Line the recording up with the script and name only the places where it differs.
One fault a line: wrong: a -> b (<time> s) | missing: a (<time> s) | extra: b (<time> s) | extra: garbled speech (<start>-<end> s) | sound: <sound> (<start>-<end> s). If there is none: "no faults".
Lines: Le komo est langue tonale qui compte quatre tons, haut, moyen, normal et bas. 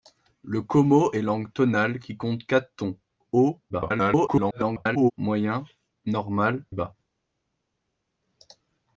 extra: garbled speech (3.7-5.1 s)
missing: et (6.7 s)